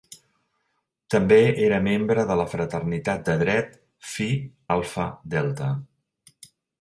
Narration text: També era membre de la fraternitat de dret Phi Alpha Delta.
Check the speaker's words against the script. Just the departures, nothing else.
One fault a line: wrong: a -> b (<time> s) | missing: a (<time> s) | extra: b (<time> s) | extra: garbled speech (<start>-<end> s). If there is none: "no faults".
no faults